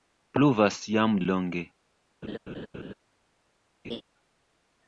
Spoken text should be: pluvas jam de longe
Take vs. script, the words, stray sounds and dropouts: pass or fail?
fail